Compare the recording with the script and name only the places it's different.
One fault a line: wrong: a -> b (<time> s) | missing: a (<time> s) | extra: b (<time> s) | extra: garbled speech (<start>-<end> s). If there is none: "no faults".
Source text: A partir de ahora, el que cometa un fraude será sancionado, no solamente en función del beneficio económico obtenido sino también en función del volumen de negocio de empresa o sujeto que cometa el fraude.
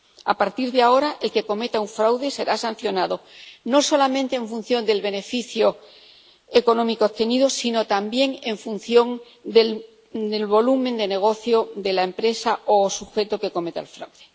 extra: la (11.9 s)